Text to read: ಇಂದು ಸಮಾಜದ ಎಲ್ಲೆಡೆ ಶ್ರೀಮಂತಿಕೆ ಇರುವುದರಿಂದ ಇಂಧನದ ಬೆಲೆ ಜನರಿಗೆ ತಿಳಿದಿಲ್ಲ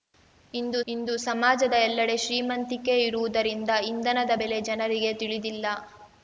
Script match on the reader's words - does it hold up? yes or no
no